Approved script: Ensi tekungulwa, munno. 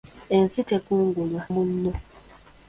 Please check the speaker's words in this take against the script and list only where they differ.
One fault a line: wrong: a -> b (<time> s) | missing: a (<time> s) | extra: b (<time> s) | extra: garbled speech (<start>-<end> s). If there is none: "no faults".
no faults